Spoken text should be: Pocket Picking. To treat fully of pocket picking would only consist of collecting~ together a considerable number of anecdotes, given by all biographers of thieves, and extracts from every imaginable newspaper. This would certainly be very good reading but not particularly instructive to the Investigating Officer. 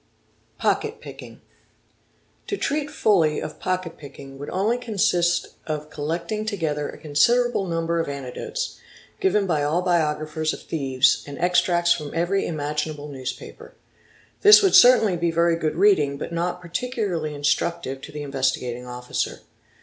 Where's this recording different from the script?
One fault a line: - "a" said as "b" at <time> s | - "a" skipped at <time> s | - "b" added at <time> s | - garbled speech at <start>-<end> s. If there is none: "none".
none